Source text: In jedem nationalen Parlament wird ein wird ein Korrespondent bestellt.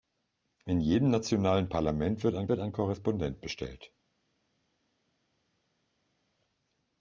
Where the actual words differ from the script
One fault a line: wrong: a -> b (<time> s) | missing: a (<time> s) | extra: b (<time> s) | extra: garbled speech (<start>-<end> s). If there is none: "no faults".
no faults